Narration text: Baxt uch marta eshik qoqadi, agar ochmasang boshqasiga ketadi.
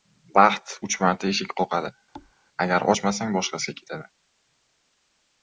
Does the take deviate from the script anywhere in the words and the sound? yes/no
yes